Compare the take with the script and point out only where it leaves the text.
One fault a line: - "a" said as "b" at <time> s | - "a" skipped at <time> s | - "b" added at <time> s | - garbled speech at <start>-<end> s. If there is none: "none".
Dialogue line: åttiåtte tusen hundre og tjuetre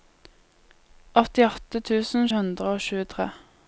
none